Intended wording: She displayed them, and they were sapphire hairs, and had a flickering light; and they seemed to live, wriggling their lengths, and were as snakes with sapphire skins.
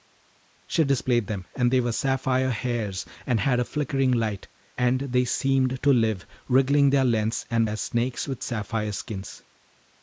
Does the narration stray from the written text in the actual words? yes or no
yes